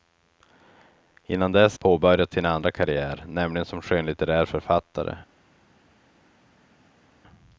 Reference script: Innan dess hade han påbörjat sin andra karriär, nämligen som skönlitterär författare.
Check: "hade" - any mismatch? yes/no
yes